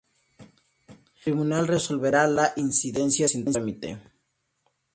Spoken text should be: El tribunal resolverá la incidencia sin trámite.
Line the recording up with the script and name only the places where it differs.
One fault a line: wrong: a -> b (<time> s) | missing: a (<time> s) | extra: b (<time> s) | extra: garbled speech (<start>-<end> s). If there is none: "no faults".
no faults